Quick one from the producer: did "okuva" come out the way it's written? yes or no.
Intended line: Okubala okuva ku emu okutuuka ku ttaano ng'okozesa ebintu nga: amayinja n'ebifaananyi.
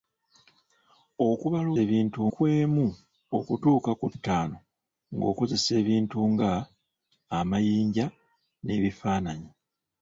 no